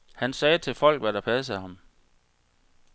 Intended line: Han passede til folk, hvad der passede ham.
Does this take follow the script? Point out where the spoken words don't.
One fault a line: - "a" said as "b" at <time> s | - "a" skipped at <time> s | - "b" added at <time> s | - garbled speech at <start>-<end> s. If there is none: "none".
- "passede" said as "sagde" at 0.3 s